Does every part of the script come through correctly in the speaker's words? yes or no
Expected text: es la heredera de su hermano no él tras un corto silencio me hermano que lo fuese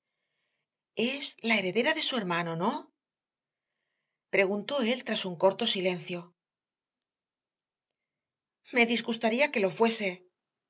no